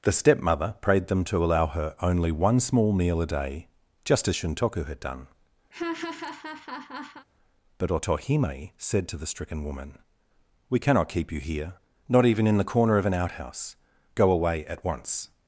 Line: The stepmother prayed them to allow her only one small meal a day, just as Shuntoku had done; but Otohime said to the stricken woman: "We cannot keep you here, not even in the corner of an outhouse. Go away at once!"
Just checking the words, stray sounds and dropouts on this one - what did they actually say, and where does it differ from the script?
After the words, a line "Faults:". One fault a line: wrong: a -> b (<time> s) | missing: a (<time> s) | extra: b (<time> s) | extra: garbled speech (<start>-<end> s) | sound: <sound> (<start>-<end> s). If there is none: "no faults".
The stepmother prayed them to allow her only one small meal a day, just as Shuntoku had done; but Otohime said to the stricken woman: "We cannot keep you here, not even in the corner of an outhouse. Go away at once!"
Faults:
sound: laugh (5.7-7.3 s)